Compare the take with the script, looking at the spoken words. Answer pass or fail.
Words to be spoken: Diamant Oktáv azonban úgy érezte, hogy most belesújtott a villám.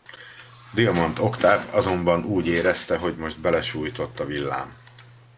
pass